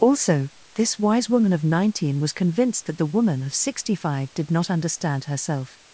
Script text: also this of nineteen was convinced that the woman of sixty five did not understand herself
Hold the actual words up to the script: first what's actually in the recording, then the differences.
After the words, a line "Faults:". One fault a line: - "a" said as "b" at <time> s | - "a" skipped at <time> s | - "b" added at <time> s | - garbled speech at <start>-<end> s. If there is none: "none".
also this wise woman of nineteen was convinced that the woman of sixty five did not understand herself
Faults:
- "wise woman" added at 1.0 s